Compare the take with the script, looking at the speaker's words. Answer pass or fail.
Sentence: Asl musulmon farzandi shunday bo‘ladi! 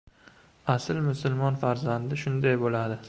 pass